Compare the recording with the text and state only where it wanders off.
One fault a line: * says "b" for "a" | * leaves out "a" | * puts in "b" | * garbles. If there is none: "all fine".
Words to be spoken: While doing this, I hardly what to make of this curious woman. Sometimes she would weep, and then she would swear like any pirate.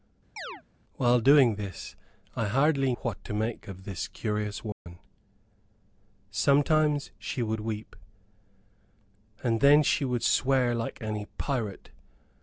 all fine